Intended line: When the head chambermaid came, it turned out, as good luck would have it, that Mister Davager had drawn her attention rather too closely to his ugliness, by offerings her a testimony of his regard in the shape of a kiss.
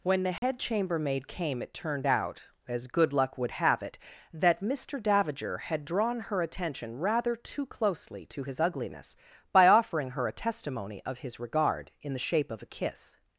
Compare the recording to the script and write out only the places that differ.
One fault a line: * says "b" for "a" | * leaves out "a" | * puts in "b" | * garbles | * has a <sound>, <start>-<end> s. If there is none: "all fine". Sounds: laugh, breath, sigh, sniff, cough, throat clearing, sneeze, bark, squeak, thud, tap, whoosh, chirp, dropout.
* has a dropout, 0.4-0.4 s
* says "offering" for "offerings"